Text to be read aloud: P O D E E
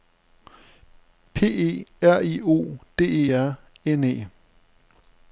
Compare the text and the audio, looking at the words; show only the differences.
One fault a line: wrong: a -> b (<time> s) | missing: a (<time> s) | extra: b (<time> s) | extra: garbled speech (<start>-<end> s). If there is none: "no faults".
extra: E R I (1.4 s)
extra: R N (3.3 s)